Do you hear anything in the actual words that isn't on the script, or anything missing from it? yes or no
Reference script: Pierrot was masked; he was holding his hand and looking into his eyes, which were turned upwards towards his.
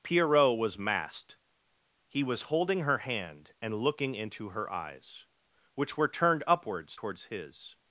yes